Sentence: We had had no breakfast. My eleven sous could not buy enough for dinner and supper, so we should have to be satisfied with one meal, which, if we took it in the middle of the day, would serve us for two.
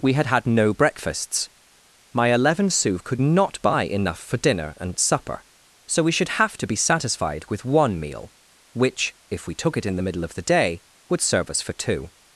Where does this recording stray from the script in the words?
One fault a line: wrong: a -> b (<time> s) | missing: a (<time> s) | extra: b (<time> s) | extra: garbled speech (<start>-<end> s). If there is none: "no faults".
wrong: breakfast -> breakfasts (0.7 s)